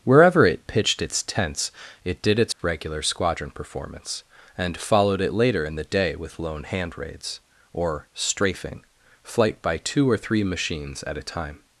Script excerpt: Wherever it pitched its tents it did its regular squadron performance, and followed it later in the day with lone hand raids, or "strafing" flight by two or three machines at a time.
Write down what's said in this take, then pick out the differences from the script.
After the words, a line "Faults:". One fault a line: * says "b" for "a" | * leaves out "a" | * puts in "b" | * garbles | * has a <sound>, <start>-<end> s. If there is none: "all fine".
Wherever it pitched its tents it did its regular squadron performance, and followed it later in the day with lone hand raids, or "strafing" flight by two or three machines at a time.
Faults:
* has a dropout, 2.5-2.6 s